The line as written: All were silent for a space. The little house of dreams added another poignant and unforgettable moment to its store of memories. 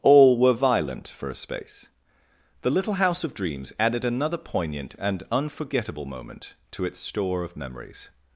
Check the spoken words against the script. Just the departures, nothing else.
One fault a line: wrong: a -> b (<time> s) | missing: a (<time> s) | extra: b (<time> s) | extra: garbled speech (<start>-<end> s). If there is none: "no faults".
wrong: silent -> violent (0.5 s)